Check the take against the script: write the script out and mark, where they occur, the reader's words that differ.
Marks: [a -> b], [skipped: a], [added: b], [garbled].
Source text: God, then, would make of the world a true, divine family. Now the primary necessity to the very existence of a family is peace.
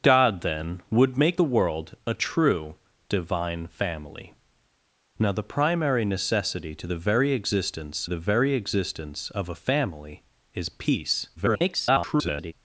God, then, would make [skipped: of] the world a true, divine family. Now the primary necessity to the very existence [added: the very existence] of a family is peace. [garbled]